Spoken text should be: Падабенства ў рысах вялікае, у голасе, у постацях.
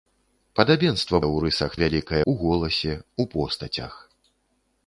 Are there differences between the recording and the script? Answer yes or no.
no